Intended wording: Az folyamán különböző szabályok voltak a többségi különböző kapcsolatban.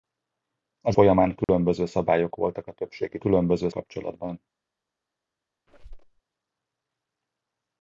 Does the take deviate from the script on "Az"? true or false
false